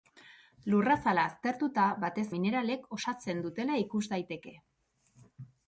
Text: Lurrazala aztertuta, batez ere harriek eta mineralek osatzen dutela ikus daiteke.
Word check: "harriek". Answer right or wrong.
wrong